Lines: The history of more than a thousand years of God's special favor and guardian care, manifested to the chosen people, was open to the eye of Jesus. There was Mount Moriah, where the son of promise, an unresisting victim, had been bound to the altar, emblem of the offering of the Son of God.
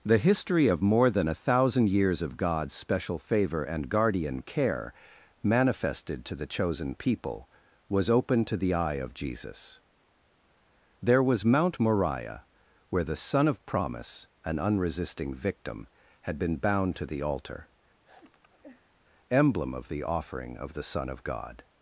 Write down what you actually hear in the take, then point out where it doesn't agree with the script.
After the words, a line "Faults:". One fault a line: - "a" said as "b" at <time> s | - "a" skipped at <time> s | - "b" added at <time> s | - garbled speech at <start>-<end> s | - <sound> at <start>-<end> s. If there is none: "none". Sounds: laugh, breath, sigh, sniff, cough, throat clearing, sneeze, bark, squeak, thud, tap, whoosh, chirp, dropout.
The history of more than a thousand years of God's special favor and guardian care, manifested to the chosen people, was open to the eye of Jesus. There was Mount Moriah, where the son of promise, an unresisting victim, had been bound to the altar, emblem of the offering of the Son of God.
Faults:
- sniff at 18.0-19.0 s